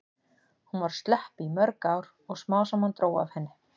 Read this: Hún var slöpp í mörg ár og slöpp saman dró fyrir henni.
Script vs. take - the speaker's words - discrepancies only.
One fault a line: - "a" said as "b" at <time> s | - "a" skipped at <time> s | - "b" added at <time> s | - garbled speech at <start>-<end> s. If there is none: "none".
- "slöpp" said as "smám" at 2.4 s
- "fyrir" said as "af" at 3.2 s